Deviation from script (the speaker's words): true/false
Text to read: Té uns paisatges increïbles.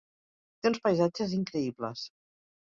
false